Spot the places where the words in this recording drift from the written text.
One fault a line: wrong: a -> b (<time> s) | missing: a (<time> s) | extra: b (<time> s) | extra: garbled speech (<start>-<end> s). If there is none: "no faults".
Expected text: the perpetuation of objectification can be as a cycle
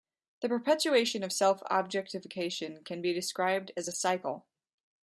extra: self (1.3 s)
extra: described (3.1 s)